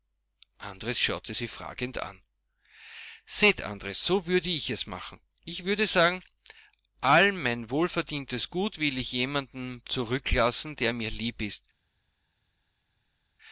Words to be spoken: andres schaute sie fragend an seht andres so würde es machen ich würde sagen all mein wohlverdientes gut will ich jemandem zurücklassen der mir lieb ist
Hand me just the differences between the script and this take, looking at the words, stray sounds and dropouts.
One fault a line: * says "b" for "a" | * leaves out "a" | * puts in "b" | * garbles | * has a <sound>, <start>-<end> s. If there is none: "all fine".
* puts in "ich"